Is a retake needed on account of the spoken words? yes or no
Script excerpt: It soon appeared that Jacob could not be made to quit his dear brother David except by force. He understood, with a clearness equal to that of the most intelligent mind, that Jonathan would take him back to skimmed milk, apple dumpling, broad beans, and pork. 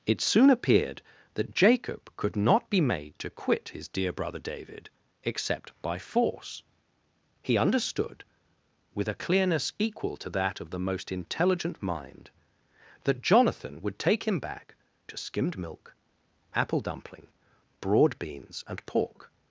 no